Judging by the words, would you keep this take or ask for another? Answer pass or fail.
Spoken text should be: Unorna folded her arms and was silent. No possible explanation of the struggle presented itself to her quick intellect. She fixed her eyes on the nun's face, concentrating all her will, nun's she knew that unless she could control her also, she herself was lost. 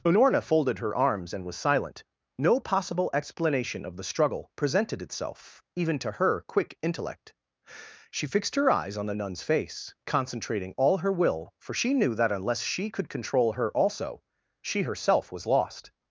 fail